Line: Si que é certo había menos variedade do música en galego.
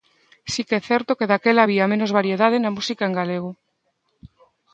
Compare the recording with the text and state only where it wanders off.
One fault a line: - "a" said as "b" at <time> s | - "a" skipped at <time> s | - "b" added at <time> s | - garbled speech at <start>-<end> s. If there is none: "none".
- "que daquela" added at 1.2 s
- "do" said as "na" at 2.6 s